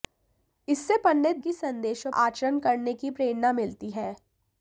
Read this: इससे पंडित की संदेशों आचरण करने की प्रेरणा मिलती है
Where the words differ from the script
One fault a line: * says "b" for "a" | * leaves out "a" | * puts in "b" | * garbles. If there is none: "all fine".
all fine